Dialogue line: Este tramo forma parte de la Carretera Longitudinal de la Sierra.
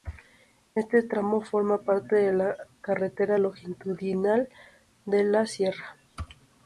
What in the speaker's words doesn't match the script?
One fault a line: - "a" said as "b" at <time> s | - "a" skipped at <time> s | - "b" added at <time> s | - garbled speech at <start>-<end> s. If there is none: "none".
none